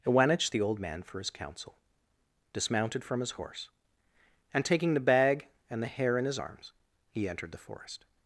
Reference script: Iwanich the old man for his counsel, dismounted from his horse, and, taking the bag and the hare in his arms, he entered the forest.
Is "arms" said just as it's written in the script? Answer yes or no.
yes